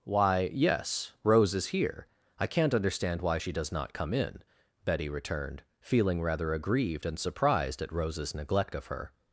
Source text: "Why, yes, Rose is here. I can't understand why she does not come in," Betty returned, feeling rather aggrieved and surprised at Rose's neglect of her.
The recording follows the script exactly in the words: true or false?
true